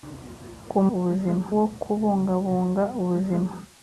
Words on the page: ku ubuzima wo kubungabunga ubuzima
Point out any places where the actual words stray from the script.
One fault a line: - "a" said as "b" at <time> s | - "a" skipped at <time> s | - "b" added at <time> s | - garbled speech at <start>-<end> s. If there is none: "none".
none